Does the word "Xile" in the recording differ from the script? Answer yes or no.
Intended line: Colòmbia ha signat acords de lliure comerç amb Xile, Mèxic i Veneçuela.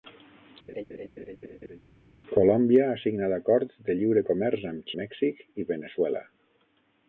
yes